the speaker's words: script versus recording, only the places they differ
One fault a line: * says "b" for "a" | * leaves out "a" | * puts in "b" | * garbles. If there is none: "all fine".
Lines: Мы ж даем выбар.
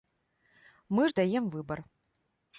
all fine